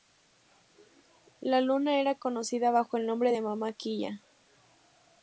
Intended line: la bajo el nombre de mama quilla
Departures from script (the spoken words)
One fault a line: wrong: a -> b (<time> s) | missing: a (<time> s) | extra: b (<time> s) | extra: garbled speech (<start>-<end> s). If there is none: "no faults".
extra: luna era conocida (1.6 s)